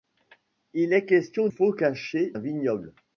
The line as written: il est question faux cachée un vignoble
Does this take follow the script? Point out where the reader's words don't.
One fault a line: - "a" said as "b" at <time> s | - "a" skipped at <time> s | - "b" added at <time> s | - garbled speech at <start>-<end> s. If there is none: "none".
none